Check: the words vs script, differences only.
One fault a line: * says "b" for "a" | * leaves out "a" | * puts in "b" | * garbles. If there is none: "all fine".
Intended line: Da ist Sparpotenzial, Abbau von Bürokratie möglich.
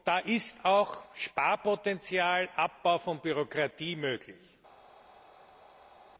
* puts in "auch"